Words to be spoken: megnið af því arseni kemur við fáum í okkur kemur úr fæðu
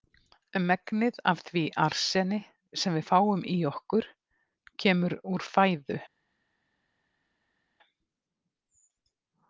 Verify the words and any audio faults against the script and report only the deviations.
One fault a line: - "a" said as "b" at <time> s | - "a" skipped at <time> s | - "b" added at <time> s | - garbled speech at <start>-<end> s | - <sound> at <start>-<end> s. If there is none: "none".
- "kemur" said as "sem" at 2.8 s